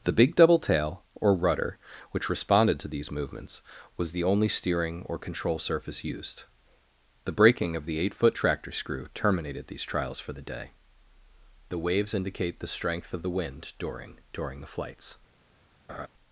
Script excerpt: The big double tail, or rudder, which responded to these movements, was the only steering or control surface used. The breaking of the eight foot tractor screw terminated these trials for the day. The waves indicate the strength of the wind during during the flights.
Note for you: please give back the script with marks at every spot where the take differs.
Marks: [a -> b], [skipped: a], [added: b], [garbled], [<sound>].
The big double tail, or rudder, which responded to these movements, was the only steering or control surface used. The breaking of the eight foot tractor screw terminated these trials for the day. The waves indicate the strength of the wind during during the flights. [laugh]